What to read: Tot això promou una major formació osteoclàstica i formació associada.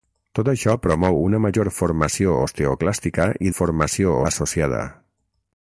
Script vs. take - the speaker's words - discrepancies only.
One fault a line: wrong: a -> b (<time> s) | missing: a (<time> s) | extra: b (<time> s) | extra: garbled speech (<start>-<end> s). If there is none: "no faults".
no faults